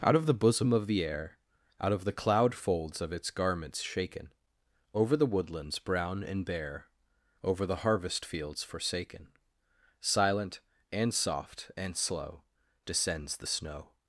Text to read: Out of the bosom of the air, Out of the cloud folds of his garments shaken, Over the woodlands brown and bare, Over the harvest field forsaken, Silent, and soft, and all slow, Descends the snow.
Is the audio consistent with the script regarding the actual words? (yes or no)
no